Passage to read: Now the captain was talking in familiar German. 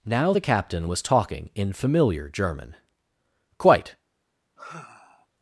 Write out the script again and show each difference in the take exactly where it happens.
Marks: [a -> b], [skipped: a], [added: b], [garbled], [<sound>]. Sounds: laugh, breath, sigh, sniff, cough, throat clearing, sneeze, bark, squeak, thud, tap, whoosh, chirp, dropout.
Now the captain was talking in familiar German. [added: Quite] [sigh]